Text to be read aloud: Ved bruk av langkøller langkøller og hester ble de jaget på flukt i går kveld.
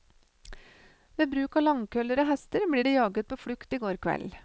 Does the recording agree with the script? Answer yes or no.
no